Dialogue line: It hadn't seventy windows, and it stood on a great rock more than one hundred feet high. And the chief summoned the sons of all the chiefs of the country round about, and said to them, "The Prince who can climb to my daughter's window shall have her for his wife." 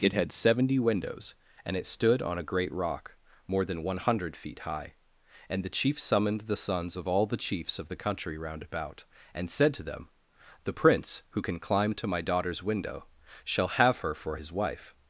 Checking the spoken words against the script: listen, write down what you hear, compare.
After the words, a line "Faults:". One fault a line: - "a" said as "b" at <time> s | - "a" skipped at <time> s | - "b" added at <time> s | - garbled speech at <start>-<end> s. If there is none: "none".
It had seventy windows, and it stood on a great rock more than one hundred feet high. And the chief summoned the sons of all the chiefs of the country round about, and said to them, "The Prince who can climb to my daughter's window shall have her for his wife."
Faults:
- "hadn't" said as "had" at 0.1 s